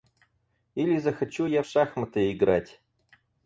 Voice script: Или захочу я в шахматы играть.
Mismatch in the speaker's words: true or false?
false